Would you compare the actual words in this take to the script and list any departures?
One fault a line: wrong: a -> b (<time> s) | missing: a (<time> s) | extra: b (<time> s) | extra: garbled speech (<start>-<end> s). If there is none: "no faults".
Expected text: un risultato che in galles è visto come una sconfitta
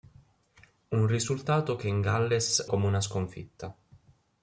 missing: è visto (2.6 s)